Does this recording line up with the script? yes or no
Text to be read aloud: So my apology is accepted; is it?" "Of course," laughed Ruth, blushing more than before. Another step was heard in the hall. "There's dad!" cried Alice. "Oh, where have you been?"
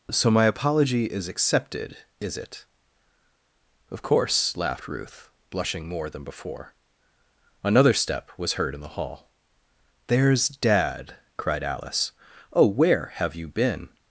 yes